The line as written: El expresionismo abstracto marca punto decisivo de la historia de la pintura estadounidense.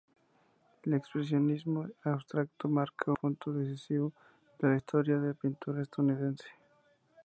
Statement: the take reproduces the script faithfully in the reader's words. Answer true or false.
true